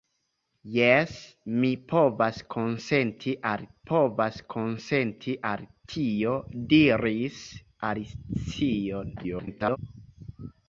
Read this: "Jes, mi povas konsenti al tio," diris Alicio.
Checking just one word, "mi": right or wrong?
right